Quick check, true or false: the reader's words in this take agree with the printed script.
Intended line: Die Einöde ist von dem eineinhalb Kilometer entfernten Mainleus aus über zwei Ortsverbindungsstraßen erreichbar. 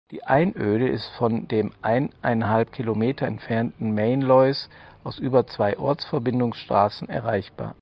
true